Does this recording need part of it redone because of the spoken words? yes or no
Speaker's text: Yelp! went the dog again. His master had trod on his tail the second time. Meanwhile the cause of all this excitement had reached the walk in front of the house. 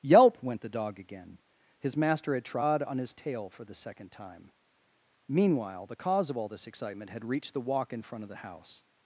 yes